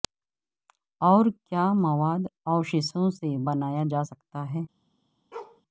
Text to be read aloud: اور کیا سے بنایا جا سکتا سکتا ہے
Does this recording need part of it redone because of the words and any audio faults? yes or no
yes